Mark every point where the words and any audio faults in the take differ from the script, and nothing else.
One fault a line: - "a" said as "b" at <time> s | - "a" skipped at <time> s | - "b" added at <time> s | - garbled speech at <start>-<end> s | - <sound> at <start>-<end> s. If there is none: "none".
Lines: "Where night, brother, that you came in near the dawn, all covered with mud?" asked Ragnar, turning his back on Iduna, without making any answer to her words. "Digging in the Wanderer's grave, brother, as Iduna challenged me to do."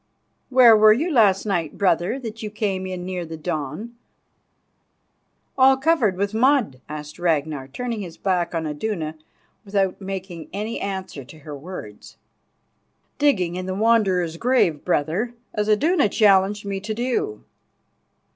- "were you last" added at 0.8 s